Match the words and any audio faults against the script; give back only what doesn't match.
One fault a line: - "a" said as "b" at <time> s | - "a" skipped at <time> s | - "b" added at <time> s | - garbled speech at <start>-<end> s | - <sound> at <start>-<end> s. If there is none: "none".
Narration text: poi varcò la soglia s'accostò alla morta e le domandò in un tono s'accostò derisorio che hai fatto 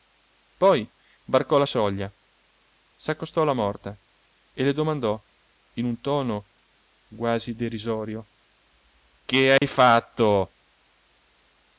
- "s'accostò" said as "quasi" at 7.1 s
- dropout at 9.6-9.6 s